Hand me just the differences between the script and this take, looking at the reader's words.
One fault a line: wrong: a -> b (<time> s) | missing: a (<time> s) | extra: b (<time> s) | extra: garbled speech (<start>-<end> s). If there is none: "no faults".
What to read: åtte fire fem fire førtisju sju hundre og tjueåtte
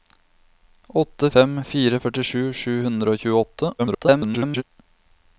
missing: fire (1.3 s)
extra: garbled speech (3.8-4.6 s)